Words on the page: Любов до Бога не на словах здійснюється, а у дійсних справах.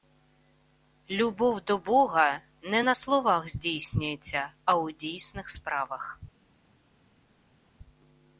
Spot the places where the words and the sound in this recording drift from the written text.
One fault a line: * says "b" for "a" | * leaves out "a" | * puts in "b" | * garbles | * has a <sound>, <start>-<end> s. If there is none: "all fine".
all fine